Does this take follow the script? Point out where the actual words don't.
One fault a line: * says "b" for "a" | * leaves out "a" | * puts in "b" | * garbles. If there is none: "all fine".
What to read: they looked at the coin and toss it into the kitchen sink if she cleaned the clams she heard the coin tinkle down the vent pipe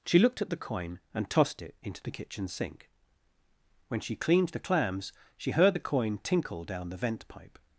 * says "she" for "they"
* says "tossed" for "toss"
* says "when" for "if"